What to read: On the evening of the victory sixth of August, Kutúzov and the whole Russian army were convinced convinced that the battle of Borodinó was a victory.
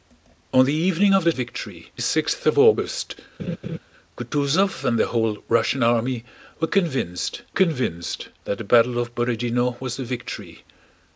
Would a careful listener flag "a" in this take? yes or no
no